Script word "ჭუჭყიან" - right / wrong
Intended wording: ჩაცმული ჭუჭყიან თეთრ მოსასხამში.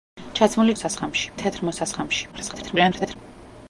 wrong